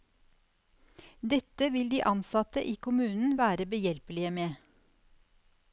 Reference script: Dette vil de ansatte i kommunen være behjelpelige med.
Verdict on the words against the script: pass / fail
pass